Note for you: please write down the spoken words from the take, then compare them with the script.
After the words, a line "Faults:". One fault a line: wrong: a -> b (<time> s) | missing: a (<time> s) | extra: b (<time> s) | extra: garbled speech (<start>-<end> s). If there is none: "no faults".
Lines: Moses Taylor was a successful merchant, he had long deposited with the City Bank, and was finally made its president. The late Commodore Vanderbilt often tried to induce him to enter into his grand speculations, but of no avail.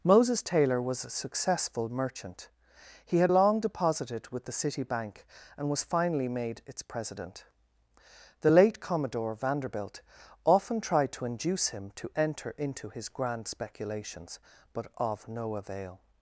Moses Taylor was a successful merchant, he had long deposited with the City Bank, and was finally made its president. The late Commodore Vanderbilt often tried to induce him to enter into his grand speculations, but of no avail.
Faults:
no faults